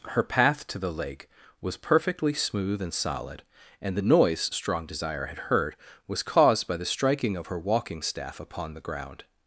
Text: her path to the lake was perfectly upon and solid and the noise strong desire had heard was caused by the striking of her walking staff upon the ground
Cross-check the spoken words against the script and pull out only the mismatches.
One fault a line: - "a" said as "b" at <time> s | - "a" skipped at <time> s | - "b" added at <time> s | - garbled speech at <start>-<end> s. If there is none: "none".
- "upon" said as "smooth" at 2.3 s